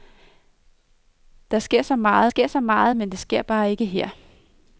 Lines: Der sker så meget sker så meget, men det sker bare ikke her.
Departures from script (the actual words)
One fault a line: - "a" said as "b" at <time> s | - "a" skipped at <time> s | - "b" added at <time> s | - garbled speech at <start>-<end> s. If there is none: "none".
none